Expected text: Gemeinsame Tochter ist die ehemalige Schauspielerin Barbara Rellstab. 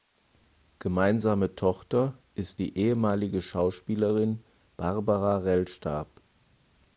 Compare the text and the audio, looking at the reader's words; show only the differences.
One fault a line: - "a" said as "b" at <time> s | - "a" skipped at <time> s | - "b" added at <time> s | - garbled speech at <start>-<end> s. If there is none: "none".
none